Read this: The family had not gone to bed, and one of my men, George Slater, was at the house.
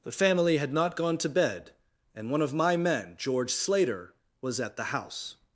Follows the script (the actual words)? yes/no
yes